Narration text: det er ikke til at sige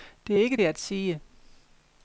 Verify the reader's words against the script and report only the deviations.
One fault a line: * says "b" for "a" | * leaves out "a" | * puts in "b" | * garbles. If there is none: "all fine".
* leaves out "til"